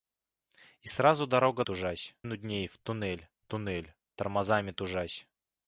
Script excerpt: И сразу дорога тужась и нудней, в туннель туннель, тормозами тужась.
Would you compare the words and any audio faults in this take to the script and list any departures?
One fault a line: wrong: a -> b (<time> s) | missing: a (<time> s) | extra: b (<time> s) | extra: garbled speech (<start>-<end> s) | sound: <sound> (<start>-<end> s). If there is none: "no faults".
no faults